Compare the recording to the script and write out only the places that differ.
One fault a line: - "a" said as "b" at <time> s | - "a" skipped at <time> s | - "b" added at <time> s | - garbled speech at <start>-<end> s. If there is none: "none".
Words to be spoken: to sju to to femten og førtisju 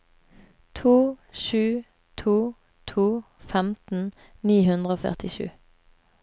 - "ni hundre" added at 4.5 s